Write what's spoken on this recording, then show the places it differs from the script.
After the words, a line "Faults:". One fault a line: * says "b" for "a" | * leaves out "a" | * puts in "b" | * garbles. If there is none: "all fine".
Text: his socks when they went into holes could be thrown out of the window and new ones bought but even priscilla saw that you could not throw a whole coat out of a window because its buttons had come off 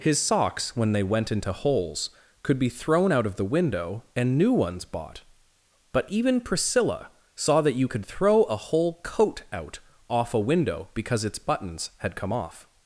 his socks when they went into holes could be thrown out of the window and new ones bought but even priscilla saw that you could throw a whole coat out off a window because its buttons had come off
Faults:
* leaves out "not"
* says "off" for "of"